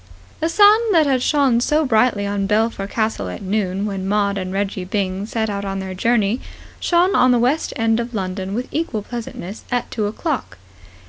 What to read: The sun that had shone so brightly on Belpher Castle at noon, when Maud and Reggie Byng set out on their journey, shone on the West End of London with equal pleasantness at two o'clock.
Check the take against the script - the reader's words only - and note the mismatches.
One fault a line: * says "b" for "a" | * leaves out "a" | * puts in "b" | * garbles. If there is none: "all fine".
all fine